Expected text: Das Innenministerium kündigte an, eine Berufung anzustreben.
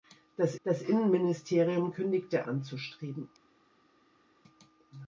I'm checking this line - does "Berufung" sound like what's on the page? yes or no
no